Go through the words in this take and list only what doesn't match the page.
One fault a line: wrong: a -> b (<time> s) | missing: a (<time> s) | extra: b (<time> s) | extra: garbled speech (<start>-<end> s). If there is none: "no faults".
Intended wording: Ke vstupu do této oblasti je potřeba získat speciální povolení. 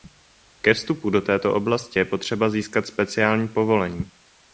no faults